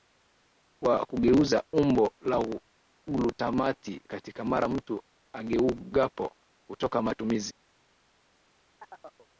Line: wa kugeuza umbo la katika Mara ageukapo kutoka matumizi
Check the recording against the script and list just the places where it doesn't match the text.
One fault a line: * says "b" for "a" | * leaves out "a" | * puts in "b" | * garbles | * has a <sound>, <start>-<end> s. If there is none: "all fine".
* puts in "glutamati"
* puts in "mtu"
* has a chirp, 8.8-9.3 s